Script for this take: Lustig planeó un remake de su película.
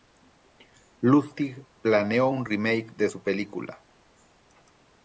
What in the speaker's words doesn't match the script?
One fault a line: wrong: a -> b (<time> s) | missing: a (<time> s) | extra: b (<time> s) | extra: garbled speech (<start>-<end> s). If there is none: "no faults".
no faults